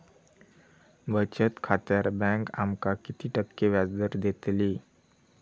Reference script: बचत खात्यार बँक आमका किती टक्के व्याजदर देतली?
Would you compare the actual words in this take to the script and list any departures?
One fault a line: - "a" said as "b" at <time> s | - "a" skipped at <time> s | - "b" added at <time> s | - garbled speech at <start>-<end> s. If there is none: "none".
none